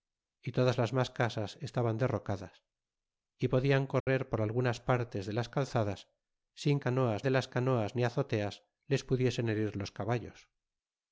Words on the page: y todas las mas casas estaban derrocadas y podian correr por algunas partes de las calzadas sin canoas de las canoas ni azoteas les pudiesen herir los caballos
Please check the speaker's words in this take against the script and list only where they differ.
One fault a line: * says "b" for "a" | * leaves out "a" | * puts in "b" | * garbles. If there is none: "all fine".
all fine